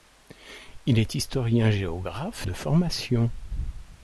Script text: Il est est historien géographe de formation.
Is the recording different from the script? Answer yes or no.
yes